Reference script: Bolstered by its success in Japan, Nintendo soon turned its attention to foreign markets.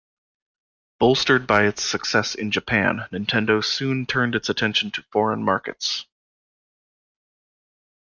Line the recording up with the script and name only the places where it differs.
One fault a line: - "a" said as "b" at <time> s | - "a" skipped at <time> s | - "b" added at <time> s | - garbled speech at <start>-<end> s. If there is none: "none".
none